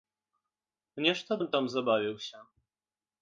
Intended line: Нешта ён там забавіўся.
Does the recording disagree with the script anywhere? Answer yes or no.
no